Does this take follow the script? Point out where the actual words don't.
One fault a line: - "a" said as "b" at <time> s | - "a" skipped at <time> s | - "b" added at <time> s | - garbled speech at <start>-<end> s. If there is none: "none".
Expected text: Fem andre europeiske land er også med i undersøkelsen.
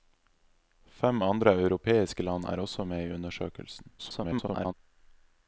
- garbled speech at 4.0-4.7 s